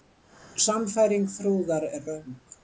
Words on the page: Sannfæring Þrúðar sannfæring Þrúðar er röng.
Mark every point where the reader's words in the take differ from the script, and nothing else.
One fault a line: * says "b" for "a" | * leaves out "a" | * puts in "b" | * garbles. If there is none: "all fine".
* leaves out "sannfæring Þrúðar"